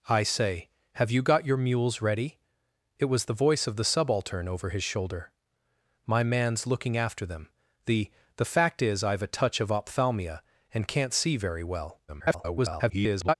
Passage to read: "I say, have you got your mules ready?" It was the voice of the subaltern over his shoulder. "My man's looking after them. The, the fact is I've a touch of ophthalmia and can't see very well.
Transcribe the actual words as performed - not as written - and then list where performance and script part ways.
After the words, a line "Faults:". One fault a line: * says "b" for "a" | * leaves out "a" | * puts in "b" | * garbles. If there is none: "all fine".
"I say, have you got your mules ready?" It was the voice of the subaltern over his shoulder. "My man's looking after them. The, the fact is I've a touch of ophthalmia and can't see very well. [garbled]
Faults:
* garbles